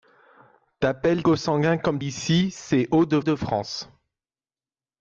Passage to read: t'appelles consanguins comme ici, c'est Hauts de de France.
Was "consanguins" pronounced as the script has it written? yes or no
yes